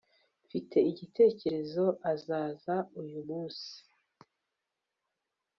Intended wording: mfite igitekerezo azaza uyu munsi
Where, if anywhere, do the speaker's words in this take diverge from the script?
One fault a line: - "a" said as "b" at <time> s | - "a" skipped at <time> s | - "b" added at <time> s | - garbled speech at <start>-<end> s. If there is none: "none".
none